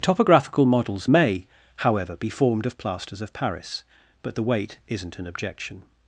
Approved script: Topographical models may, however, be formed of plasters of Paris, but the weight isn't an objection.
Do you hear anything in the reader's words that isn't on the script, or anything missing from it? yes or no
no